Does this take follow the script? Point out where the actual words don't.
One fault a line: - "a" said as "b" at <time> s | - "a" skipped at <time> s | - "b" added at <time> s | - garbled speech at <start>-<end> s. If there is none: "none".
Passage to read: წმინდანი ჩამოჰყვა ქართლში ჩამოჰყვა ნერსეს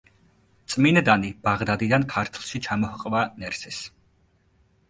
- "ჩამოჰყვა" said as "ბაღდადიდან" at 1.5 s